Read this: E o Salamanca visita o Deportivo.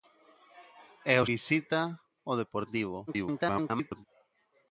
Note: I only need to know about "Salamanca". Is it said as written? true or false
false